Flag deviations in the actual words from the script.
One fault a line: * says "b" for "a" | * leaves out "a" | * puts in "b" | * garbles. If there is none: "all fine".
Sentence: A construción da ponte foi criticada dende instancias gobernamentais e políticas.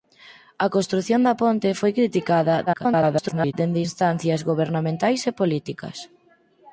* garbles